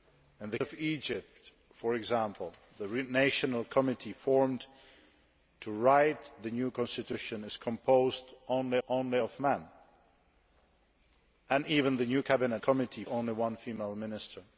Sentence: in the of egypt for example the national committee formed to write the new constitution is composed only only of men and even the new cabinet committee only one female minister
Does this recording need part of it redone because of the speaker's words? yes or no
no